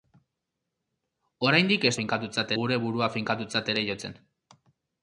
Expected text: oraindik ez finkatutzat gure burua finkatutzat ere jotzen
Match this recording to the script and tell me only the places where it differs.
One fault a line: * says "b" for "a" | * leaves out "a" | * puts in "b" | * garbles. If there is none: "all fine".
all fine